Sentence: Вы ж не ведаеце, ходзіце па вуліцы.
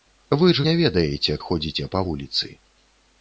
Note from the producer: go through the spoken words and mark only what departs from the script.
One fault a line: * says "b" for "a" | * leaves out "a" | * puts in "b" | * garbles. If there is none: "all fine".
all fine